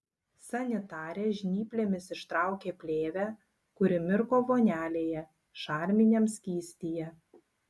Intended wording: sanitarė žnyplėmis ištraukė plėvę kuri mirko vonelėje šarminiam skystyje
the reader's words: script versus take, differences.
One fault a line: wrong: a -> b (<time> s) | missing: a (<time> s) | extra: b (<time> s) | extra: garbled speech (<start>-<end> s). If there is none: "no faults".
no faults